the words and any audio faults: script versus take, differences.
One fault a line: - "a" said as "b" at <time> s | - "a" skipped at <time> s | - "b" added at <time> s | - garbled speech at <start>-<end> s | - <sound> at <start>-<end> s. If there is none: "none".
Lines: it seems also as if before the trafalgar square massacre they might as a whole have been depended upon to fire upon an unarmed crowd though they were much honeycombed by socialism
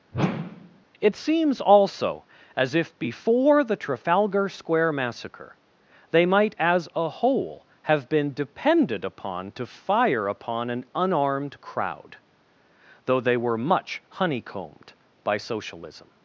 - whoosh at 0.1-0.8 s